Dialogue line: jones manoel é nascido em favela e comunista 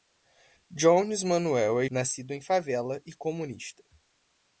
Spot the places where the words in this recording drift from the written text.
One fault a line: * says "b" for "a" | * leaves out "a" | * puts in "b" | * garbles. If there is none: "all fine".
all fine